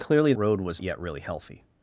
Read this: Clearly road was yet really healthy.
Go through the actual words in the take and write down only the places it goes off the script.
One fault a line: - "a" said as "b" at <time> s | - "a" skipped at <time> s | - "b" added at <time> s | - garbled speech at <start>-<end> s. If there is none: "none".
none